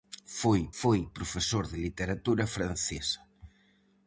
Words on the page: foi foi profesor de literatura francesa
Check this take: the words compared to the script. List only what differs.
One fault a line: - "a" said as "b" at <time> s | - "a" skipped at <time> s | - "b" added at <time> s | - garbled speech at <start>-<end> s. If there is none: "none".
none